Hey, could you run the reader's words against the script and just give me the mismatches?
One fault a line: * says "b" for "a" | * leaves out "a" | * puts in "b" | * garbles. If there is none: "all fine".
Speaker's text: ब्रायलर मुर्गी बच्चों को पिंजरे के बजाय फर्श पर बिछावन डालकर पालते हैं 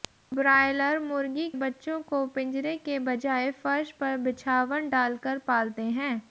all fine